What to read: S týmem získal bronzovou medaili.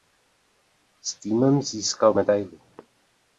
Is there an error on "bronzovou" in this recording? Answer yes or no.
yes